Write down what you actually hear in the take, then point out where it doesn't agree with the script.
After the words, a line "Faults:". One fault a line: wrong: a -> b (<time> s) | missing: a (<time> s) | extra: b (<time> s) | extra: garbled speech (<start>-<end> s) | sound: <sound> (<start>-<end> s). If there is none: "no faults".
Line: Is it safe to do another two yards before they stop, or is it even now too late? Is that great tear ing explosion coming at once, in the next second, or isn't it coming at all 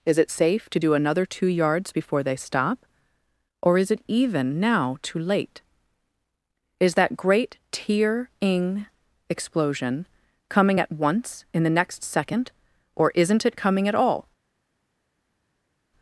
Is it safe to do another two yards before they stop, or is it even now too late? Is that great tear ing explosion coming at once, in the next second, or isn't it coming at all
Faults:
no faults